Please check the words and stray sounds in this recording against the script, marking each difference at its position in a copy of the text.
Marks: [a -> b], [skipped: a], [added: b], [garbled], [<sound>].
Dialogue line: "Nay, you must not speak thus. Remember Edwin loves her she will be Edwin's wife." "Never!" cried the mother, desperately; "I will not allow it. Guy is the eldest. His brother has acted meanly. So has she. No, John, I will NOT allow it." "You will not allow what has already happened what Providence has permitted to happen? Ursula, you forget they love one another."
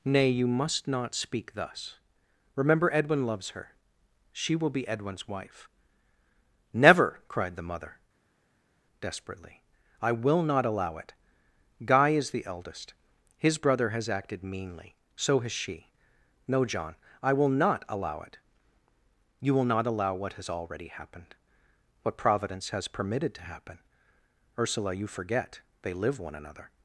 "Nay, you must not speak thus. Remember Edwin loves her she will be Edwin's wife." "Never!" cried the mother, desperately; "I will not allow it. Guy is the eldest. His brother has acted meanly. So has she. No, John, I will NOT allow it." "You will not allow what has already happened what Providence has permitted to happen? Ursula, you forget they [love -> live] one another."